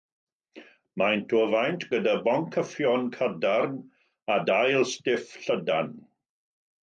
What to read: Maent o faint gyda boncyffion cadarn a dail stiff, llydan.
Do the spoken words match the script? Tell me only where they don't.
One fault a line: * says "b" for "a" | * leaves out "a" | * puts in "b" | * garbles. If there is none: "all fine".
all fine